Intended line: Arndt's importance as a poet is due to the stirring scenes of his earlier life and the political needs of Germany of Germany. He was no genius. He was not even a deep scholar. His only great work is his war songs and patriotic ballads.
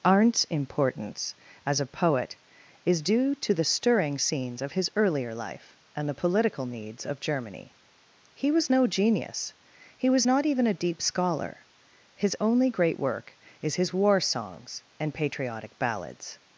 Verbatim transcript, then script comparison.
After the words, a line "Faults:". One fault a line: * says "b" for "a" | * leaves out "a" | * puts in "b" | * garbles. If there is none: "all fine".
Arndt's importance as a poet is due to the stirring scenes of his earlier life and the political needs of Germany. He was no genius. He was not even a deep scholar. His only great work is his war songs and patriotic ballads.
Faults:
* leaves out "of Germany"